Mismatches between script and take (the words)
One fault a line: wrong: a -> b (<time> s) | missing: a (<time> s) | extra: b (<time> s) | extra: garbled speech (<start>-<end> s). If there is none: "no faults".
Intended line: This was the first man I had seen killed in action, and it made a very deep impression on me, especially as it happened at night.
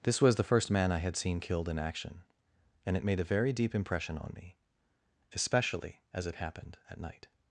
no faults